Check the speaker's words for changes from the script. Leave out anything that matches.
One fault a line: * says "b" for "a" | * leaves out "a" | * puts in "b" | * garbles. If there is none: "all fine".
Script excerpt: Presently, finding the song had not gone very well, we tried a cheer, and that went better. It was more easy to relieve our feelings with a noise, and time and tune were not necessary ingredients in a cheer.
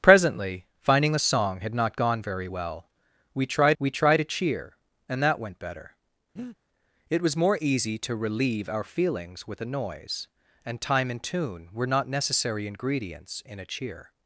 * puts in "we tried"